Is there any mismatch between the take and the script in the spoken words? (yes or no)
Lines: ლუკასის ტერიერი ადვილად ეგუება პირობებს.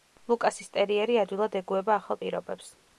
yes